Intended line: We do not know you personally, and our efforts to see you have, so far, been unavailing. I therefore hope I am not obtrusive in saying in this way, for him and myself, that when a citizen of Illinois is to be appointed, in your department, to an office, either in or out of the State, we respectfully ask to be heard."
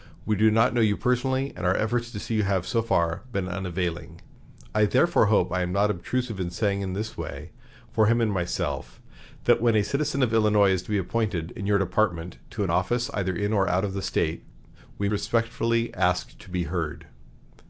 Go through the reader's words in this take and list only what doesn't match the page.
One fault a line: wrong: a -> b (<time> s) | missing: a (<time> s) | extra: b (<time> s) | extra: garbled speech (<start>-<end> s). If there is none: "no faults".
no faults